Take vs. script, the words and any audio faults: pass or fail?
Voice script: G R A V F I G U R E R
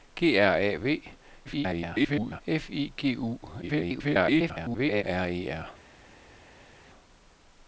fail